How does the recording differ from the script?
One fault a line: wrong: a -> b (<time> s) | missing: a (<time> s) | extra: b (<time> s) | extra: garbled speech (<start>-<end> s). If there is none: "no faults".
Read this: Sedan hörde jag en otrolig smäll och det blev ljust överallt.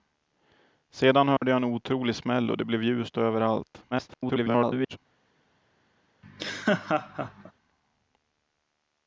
extra: garbled speech (3.9-5.0 s)